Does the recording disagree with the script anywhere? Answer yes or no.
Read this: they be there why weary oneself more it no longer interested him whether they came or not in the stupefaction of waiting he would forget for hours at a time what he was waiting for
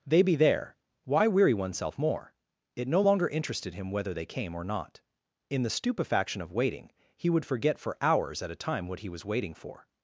no